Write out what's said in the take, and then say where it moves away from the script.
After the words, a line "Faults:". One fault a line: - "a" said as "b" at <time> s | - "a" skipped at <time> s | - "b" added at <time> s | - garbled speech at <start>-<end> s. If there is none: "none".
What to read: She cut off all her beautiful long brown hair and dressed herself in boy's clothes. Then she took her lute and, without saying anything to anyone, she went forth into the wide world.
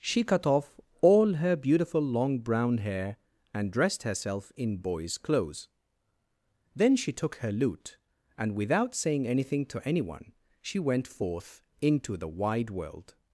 She cut off all her beautiful long brown hair and dressed herself in boy's clothes. Then she took her lute and, without saying anything to anyone, she went forth into the wide world.
Faults:
none